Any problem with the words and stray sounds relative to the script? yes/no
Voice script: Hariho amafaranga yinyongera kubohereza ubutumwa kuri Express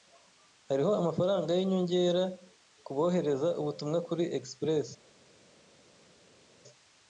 no